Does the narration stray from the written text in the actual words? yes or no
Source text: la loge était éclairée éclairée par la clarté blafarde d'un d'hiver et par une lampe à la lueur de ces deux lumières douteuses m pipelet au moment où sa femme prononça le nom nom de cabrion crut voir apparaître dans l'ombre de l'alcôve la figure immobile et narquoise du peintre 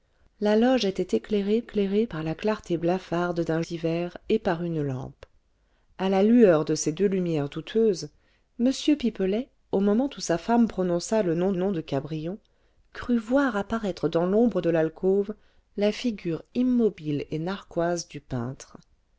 no